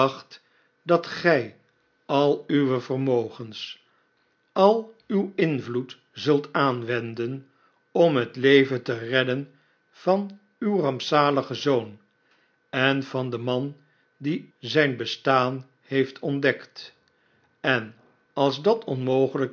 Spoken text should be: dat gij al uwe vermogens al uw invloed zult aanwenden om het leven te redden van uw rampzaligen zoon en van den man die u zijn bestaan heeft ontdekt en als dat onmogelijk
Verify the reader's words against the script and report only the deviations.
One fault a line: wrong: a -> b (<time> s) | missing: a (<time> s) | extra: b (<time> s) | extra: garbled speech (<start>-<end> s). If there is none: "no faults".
missing: u (14.5 s)